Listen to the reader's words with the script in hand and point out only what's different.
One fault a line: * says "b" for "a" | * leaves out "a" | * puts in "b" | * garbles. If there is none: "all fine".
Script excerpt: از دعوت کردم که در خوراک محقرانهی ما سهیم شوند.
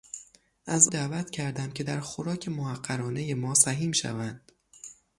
all fine